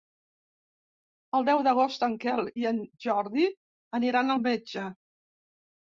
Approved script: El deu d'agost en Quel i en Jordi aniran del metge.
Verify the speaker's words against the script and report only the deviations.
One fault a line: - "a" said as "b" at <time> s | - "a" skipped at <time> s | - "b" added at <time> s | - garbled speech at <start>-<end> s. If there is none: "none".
- "del" said as "al" at 4.3 s